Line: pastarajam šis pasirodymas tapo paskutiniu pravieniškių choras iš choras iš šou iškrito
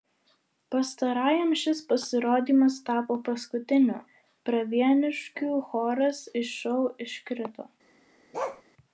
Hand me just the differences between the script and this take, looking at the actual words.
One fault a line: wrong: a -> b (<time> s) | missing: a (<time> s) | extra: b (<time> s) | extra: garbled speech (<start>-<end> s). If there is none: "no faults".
missing: choras iš (6.6 s)